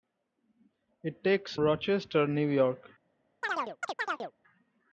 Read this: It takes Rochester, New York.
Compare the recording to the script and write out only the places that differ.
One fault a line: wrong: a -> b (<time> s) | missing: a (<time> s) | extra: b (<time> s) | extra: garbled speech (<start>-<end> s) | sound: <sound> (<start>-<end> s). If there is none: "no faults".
sound: chirp (3.4-4.3 s)